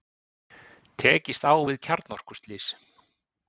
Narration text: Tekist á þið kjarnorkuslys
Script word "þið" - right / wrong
wrong